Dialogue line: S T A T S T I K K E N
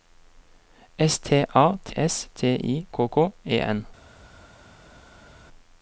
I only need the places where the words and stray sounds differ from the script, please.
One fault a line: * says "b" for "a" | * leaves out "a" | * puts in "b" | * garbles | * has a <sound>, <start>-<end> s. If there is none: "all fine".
all fine